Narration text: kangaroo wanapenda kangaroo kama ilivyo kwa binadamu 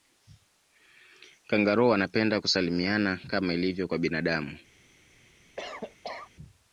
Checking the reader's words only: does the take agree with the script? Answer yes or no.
no